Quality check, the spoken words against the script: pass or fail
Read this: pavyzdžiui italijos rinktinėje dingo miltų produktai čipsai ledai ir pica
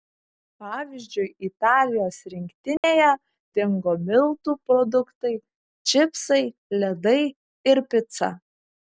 pass